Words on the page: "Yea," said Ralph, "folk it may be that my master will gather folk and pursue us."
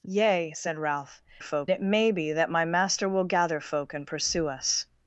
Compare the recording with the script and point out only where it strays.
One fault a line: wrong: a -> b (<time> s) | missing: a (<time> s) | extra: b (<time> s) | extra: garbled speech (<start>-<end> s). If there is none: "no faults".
no faults